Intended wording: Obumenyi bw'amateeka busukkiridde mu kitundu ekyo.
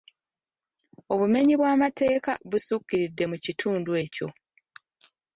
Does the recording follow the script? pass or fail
pass